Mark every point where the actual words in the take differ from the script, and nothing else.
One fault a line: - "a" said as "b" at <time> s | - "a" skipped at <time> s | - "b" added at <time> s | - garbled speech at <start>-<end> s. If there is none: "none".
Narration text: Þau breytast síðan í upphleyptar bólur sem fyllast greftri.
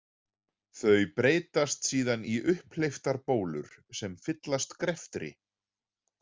none